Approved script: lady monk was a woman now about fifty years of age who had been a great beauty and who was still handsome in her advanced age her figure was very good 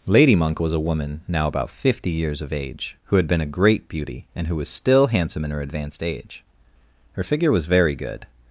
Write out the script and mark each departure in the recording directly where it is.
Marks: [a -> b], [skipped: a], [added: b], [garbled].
lady monk was a woman now about fifty years of age who had been a great beauty and who was still handsome in her advanced age her figure was very good